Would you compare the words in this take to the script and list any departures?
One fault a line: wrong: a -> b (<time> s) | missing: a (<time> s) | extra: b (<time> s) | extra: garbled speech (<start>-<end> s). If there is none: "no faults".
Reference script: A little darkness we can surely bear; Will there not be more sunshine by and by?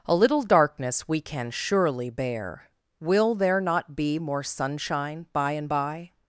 no faults